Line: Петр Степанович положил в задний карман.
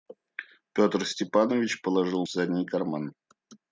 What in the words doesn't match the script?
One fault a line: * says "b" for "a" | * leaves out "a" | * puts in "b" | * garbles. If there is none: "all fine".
all fine